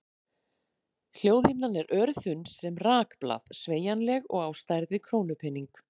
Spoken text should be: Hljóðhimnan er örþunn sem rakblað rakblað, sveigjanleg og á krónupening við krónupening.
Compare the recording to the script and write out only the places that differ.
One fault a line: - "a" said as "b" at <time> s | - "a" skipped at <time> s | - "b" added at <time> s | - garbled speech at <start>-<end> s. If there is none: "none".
- "rakblað" skipped at 3.5 s
- "krónupening" said as "stærð" at 4.6 s